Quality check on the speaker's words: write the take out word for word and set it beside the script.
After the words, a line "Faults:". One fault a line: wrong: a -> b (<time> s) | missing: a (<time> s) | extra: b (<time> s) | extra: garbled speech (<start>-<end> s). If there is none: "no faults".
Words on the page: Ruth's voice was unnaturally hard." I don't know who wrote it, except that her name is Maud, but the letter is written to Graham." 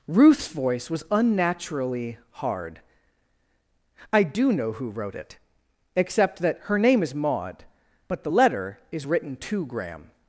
Ruth's voice was unnaturally hard." I do know who wrote it, except that her name is Maud, but the letter is written to Graham."
Faults:
wrong: don't -> do (4.2 s)